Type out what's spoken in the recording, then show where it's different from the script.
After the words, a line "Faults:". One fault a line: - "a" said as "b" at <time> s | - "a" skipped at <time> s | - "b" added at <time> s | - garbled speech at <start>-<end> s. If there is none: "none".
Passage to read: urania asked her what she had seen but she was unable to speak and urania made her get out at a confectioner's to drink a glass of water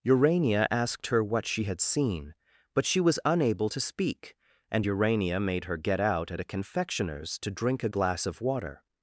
urania asked her what she had seen but she was unable to speak and urania made her get out at a confectioner's to drink a glass of water
Faults:
none